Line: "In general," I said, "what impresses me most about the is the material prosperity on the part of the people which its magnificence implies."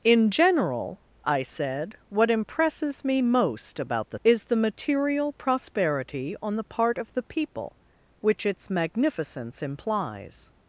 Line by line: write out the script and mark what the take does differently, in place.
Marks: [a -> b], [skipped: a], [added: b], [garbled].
"In general," I said, "what impresses me most about the is the material prosperity on the part of the people which its magnificence implies."